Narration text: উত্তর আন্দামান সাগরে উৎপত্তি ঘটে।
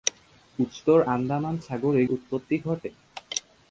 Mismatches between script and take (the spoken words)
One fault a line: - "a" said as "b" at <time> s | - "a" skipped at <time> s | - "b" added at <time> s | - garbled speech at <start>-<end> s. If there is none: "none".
none